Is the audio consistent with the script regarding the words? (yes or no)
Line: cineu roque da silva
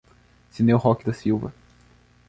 yes